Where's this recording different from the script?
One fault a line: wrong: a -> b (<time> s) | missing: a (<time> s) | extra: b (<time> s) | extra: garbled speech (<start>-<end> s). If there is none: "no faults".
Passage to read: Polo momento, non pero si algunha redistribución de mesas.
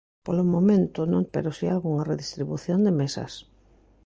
no faults